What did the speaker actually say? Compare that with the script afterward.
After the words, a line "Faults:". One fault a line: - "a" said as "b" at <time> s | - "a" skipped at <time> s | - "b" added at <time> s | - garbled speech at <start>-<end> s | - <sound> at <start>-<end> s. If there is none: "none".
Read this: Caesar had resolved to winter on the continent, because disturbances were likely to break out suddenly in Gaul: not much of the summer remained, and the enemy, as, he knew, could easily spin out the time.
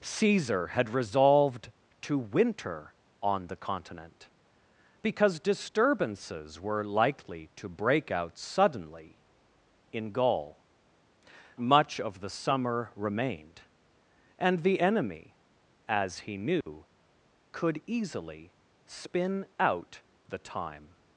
Caesar had resolved to winter on the continent, because disturbances were likely to break out suddenly in Gaul: much of the summer remained, and the enemy, as, he knew, could easily spin out the time.
Faults:
- "not" skipped at 10.7 s
- dropout at 16.6-16.7 s